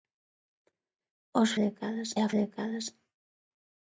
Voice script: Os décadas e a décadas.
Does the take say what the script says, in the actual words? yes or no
yes